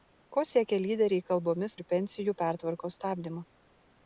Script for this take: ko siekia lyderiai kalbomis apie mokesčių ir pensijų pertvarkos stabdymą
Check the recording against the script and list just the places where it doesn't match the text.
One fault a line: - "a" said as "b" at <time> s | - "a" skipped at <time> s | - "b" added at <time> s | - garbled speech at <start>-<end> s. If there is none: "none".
- "apie mokesčių" skipped at 1.8 s